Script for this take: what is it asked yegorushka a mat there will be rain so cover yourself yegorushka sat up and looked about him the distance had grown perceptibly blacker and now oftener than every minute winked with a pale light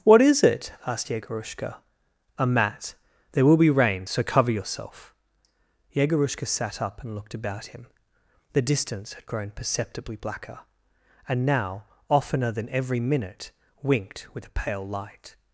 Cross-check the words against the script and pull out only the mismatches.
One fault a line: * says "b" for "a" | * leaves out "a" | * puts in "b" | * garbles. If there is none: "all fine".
all fine